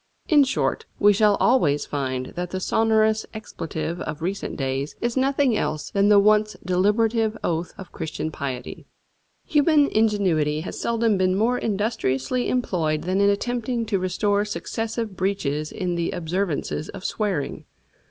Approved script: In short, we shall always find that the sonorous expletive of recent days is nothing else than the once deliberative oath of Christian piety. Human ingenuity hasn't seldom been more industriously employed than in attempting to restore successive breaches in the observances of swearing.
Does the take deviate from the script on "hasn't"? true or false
true